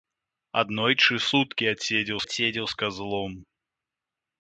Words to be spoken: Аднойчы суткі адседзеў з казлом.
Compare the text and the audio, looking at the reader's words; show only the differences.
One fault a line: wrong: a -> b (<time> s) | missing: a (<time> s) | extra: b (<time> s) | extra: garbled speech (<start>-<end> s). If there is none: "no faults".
extra: адседзеў (2.2 s)